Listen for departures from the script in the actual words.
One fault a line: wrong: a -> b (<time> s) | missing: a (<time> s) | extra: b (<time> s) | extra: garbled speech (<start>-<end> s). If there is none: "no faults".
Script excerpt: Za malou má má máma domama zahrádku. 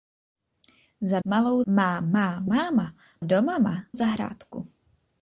no faults